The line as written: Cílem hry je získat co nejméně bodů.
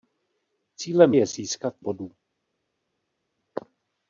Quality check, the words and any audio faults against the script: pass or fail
fail